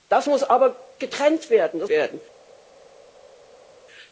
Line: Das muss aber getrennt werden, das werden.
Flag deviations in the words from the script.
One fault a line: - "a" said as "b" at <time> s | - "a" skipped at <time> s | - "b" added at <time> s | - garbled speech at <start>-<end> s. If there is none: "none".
none